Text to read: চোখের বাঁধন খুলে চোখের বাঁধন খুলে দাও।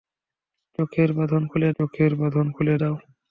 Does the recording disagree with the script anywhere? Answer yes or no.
no